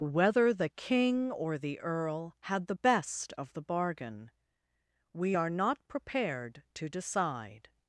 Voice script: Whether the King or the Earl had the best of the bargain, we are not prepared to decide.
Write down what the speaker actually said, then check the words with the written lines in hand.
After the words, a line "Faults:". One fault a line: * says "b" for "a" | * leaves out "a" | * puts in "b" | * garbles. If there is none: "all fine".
Whether the King or the Earl had the best of the bargain, we are not prepared to decide.
Faults:
all fine